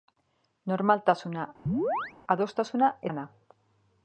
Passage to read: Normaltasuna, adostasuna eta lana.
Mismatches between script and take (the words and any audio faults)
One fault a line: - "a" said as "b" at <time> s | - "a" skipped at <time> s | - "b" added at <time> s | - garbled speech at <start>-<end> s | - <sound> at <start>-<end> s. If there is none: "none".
- chirp at 1.7-2.1 s
- "eta" skipped at 2.9 s